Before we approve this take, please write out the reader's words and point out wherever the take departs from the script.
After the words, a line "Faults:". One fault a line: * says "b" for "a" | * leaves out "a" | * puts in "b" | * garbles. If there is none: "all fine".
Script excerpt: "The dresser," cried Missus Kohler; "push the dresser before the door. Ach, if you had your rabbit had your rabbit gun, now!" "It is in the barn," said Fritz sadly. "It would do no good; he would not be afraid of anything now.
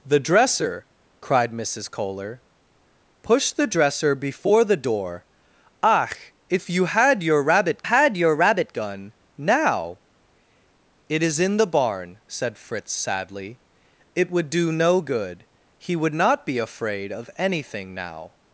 "The dresser," cried Missus Kohler; "push the dresser before the door. Ach, if you had your rabbit had your rabbit gun, now!" "It is in the barn," said Fritz sadly. "It would do no good; he would not be afraid of anything now.
Faults:
all fine